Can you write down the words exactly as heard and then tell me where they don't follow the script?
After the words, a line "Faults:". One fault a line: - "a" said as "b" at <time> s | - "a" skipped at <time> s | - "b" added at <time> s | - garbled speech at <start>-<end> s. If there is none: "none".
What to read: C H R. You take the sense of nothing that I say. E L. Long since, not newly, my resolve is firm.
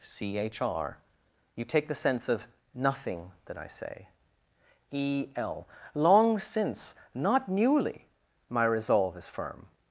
C H R. You take the sense of nothing that I say. E L. Long since, not newly, my resolve is firm.
Faults:
none